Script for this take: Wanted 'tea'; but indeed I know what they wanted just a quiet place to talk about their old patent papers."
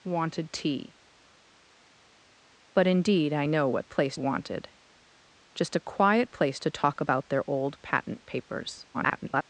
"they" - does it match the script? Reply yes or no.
no